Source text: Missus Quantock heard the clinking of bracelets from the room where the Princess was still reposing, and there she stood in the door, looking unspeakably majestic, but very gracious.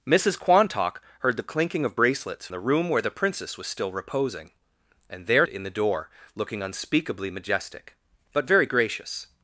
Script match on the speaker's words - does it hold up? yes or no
no